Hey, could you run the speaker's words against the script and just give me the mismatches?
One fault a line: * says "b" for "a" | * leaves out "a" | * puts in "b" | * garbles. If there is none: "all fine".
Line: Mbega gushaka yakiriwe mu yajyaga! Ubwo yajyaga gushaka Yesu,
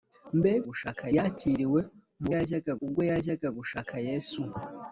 all fine